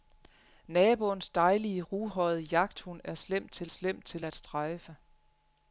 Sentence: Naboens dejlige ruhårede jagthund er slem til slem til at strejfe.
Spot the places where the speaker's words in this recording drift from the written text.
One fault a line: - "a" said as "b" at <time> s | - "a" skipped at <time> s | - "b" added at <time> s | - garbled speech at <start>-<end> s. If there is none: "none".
none